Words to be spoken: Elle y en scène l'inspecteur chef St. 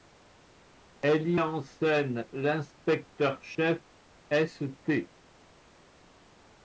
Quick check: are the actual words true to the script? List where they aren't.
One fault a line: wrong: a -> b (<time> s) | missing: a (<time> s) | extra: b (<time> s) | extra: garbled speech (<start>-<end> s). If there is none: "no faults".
no faults